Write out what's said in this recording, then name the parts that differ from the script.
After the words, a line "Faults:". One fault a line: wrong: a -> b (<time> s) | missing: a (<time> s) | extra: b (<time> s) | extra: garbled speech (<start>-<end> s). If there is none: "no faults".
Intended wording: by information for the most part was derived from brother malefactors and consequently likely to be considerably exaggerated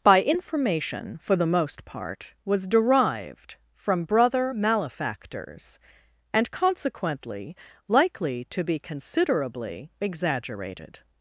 by information for the most part was derived from brother malefactors and consequently likely to be considerably exaggerated
Faults:
no faults